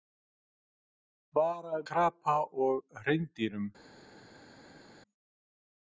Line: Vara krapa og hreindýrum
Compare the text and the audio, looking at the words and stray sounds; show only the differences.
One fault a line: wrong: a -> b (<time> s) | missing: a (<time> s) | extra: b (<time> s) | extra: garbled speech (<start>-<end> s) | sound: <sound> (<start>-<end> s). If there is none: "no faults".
no faults